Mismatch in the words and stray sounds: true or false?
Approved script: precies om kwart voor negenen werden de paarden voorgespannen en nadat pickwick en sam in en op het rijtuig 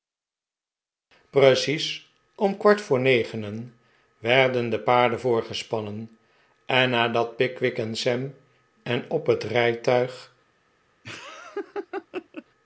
true